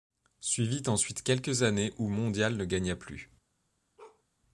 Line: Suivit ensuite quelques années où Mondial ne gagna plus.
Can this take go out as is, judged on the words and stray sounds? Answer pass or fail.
fail